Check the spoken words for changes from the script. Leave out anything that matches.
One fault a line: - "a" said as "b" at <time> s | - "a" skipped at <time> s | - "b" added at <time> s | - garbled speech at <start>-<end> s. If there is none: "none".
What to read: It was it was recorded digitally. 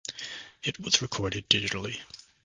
- "it was" skipped at 1.0 s